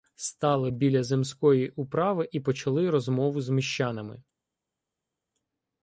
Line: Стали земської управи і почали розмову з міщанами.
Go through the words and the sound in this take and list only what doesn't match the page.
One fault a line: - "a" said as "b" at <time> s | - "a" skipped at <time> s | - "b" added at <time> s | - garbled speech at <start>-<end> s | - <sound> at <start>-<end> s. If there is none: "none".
- "біля" added at 0.7 s